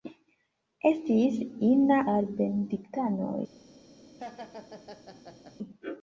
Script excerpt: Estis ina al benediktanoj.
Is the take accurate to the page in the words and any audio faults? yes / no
no